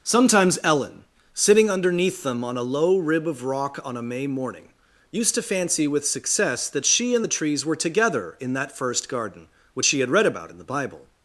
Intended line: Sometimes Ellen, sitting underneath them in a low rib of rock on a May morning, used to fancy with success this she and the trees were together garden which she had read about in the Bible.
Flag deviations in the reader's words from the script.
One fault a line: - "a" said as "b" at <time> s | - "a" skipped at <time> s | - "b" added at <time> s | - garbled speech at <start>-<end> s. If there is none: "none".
- "in" said as "on" at 2.4 s
- "this" said as "that" at 6.7 s
- "in that first" added at 8.4 s